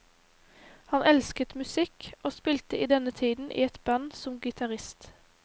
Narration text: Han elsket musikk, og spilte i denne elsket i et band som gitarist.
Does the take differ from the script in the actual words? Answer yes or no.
yes